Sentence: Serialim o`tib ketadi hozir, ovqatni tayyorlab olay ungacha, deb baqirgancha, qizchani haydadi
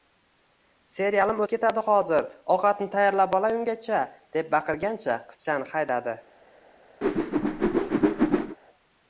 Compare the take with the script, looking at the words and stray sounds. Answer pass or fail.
fail